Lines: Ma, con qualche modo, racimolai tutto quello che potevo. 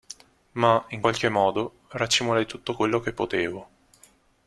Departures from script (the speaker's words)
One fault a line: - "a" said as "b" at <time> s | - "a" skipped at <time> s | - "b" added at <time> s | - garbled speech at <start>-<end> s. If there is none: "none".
- "con" said as "in" at 0.9 s